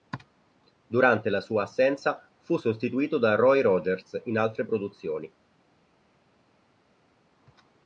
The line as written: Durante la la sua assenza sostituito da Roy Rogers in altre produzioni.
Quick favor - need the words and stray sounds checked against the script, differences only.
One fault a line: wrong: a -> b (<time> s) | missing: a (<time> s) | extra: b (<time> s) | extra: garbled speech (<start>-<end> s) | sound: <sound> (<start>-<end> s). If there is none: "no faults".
missing: la (1.4 s)
extra: fu (2.4 s)